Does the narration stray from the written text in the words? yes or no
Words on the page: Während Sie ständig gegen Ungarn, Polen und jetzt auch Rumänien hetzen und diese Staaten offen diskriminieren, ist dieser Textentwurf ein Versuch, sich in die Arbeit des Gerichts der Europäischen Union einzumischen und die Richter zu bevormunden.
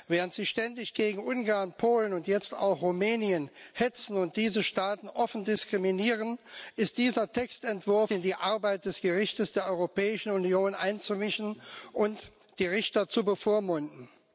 yes